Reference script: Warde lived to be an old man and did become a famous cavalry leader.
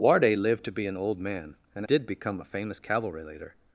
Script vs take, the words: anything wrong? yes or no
no